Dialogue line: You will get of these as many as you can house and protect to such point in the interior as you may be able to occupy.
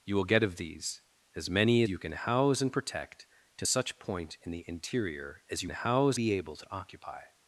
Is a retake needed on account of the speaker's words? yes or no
yes